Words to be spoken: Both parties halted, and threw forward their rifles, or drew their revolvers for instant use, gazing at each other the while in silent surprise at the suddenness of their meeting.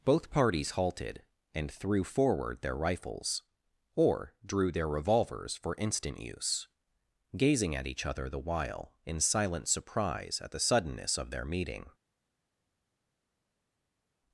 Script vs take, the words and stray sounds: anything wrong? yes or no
no